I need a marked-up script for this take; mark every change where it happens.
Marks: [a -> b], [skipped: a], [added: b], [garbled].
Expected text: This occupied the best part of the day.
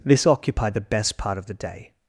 This occupied the best part of the day.